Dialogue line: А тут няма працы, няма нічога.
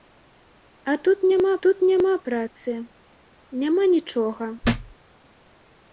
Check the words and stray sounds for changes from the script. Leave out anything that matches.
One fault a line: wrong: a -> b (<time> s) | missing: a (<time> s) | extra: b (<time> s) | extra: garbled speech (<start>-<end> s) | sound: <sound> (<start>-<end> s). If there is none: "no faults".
extra: тут няма (1.7 s)
sound: thud (4.6-5.0 s)